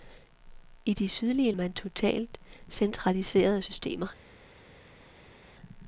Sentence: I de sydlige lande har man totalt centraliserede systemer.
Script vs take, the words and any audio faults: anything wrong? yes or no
yes